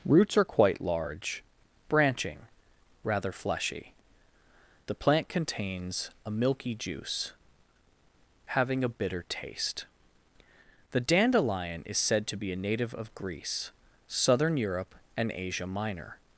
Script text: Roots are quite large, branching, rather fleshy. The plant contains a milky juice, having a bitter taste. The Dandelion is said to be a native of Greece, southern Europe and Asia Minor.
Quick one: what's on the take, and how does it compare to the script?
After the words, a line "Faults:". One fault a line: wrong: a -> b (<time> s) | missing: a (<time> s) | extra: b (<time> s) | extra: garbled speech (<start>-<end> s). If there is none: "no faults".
Roots are quite large, branching, rather fleshy. The plant contains a milky juice, having a bitter taste. The Dandelion is said to be a native of Greece, southern Europe and Asia Minor.
Faults:
no faults